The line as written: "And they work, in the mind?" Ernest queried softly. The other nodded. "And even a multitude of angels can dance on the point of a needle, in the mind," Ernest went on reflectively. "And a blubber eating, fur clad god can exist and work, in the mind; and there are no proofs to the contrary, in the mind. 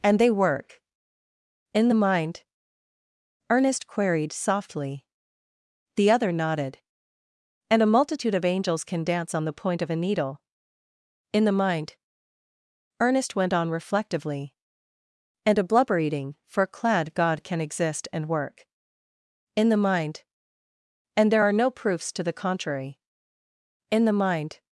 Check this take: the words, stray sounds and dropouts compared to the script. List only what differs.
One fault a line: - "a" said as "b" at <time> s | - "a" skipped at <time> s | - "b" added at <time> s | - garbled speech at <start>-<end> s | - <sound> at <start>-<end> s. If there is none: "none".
- "even" skipped at 7.8 s